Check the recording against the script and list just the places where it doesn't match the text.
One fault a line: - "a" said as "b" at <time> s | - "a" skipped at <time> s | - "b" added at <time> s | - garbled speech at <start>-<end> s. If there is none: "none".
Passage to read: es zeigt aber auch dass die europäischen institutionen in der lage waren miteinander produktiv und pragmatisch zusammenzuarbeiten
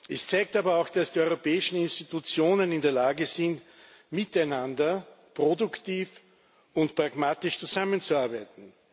- "waren" said as "sind" at 3.2 s